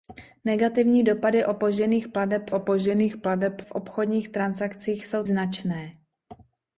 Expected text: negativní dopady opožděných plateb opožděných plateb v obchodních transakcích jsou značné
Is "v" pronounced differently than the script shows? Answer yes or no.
no